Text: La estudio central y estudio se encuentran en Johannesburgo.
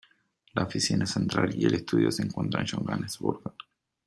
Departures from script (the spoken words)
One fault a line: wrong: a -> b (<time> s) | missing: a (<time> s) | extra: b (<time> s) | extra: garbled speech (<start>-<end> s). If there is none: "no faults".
wrong: estudio -> oficina (0.6 s)
extra: el (1.6 s)